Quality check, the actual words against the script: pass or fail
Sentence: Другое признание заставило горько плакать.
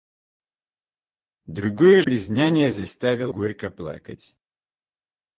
pass